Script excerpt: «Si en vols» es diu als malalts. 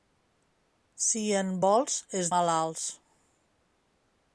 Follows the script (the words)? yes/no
no